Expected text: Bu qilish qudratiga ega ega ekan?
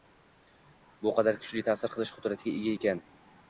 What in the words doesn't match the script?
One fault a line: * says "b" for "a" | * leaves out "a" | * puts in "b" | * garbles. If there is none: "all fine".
* puts in "qadar kuchli ta'sir"
* leaves out "ega"